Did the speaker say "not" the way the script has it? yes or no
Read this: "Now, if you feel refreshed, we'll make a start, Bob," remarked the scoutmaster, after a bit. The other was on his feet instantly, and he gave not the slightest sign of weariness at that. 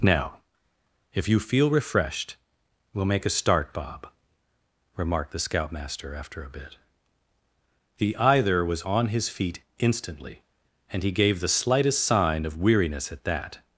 no